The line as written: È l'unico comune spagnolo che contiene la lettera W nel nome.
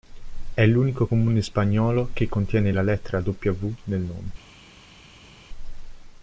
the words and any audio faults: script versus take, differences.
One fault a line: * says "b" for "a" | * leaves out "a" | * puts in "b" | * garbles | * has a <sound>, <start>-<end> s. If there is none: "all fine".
all fine